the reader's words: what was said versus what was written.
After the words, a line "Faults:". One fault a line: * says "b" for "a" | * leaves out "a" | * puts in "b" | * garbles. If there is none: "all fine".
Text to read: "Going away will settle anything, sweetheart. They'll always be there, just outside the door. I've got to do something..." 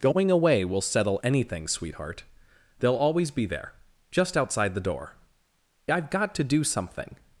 "Going away will settle anything, sweetheart. They'll always be there, just outside the door. I've got to do something..."
Faults:
all fine